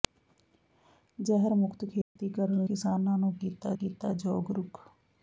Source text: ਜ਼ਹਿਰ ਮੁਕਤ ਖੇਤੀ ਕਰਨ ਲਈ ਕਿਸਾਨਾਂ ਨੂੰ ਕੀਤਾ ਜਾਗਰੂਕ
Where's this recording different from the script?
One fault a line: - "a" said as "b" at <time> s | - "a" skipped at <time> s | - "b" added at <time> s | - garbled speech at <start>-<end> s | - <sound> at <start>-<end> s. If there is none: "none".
- dropout at 2.0-2.2 s
- "ਲਈ" skipped at 2.6 s
- "ਕੀਤਾ" added at 3.7 s